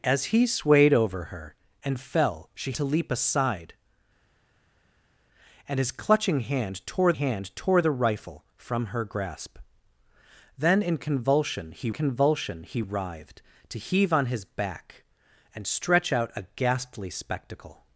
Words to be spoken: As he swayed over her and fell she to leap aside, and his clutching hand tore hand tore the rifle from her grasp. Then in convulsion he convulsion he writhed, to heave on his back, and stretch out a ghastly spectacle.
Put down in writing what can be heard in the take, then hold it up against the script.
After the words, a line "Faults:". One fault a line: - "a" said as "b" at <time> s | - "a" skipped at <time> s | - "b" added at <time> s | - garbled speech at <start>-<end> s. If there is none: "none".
As he swayed over her and fell she to leap aside, and his clutching hand tore hand tore the rifle from her grasp. Then in convulsion he convulsion he writhed, to heave on his back, and stretch out a ghastly spectacle.
Faults:
none